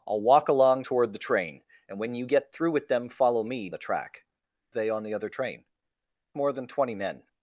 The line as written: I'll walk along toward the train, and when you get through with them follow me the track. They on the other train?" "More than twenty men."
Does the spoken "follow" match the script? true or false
true